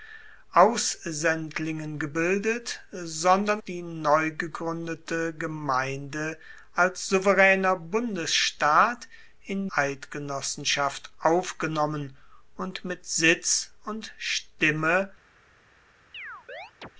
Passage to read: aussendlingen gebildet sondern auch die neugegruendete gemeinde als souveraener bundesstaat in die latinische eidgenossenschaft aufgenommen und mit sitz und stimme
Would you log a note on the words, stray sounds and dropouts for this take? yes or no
yes